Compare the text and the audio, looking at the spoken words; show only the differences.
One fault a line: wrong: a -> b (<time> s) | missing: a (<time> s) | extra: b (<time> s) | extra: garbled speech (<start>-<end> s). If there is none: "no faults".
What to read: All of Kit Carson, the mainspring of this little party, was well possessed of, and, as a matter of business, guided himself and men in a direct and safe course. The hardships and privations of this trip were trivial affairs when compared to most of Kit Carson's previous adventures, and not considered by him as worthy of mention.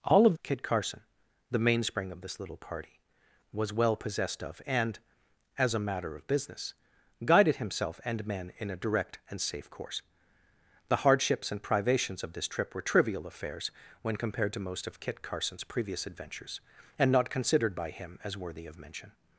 no faults